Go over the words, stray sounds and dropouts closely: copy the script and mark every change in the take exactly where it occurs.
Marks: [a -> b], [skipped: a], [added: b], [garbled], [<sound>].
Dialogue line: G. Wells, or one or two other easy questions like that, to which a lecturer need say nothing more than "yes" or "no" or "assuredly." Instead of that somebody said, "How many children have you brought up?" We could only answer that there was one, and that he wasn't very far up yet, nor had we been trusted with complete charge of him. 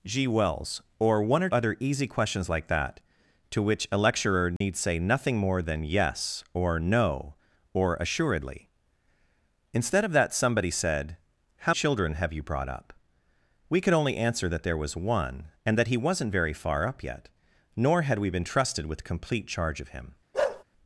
G. Wells, or one or [skipped: two] other easy questions like that, to which a lecturer need [dropout] say nothing more than "yes" or "no" or "assuredly." Instead of that somebody said, "How [skipped: many] children have you brought up?" We could only answer that there was one, and that he wasn't very far up yet, nor had we been trusted with complete charge of him. [bark]